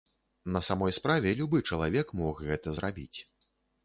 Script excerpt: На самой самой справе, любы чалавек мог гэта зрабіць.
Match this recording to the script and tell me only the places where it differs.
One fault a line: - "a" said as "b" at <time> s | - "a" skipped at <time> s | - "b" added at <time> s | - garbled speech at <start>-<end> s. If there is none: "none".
- "самой" skipped at 0.9 s